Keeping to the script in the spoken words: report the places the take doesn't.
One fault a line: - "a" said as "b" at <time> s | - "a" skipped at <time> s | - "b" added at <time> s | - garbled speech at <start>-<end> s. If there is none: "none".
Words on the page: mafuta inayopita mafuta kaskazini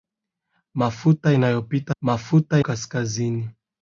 none